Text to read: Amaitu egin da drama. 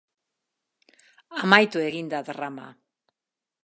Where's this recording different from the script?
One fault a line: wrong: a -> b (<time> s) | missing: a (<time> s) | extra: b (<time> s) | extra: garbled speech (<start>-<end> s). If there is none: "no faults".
no faults